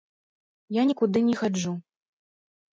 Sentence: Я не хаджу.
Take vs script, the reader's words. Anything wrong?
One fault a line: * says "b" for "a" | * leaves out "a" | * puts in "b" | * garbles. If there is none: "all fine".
* puts in "нікуды"